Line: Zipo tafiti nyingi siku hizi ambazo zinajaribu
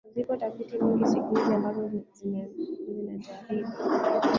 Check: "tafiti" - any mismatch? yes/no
no